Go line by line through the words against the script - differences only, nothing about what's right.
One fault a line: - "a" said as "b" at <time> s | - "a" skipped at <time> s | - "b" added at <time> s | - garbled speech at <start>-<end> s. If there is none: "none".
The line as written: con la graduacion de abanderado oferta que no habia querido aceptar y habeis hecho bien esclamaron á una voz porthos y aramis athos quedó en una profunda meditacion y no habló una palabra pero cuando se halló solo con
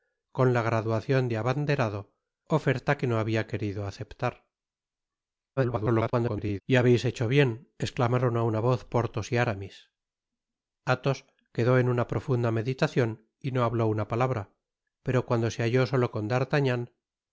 - garbled speech at 5.6-6.6 s